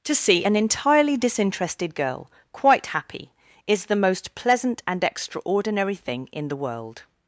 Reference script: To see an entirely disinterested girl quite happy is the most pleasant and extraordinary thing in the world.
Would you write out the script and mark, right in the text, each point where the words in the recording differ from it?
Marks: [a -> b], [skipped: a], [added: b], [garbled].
To see an entirely disinterested girl quite happy is the most pleasant and extraordinary thing in the world.